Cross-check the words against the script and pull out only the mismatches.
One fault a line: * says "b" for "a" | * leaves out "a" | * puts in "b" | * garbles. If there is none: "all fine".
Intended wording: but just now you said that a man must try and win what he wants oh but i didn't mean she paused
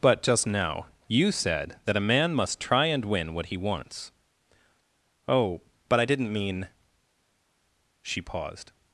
all fine